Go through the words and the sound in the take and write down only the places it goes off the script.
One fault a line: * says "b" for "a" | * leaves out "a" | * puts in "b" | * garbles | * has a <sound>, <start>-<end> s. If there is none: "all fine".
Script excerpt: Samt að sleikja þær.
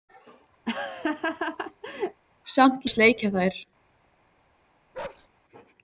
* has a laugh, 0.7-2.2 s
* has a bark, 4.9-5.3 s